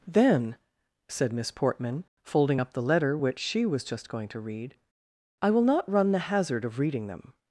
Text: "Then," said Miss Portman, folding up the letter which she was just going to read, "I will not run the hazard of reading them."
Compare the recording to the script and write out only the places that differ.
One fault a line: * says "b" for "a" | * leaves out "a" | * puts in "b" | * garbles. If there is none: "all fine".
all fine